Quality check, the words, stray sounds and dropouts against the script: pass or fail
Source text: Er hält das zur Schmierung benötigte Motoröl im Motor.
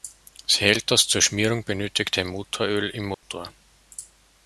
fail